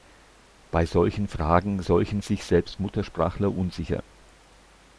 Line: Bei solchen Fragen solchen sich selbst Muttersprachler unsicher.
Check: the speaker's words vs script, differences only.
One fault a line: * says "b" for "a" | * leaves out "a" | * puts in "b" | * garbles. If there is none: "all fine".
all fine